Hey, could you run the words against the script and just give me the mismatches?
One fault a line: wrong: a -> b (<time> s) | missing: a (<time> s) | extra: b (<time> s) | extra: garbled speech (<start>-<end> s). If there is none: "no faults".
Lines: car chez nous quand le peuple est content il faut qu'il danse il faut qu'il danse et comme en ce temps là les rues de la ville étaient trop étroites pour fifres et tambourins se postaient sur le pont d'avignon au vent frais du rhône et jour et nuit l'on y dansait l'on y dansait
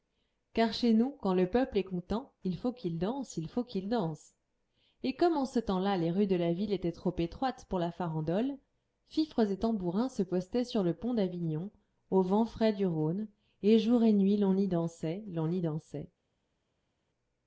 extra: la farandole (7.8 s)